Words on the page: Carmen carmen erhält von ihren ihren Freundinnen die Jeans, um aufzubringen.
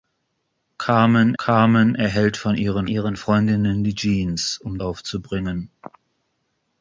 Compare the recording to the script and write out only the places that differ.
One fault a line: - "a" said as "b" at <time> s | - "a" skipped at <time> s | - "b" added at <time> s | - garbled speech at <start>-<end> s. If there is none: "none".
none